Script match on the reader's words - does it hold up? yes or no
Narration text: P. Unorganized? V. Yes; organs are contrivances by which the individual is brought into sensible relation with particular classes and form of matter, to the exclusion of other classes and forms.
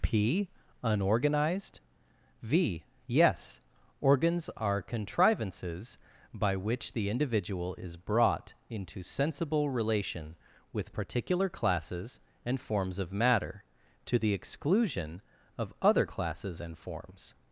no